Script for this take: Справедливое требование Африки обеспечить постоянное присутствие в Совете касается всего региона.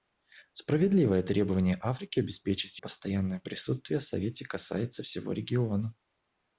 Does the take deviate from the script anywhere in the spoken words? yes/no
no